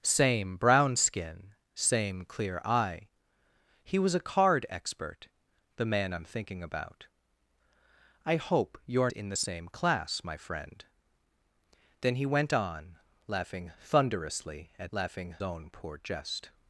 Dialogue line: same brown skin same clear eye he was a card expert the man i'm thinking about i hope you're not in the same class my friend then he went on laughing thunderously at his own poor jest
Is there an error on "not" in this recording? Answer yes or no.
yes